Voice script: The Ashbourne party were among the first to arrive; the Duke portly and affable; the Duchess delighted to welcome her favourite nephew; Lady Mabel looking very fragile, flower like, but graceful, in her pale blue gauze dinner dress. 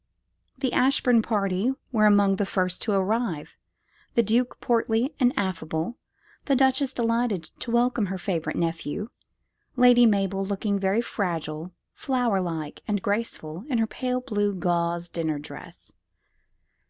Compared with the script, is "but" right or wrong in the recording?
wrong